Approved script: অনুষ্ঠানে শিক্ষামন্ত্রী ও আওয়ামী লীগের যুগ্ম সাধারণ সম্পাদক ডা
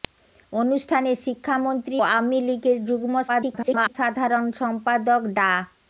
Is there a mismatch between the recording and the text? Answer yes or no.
yes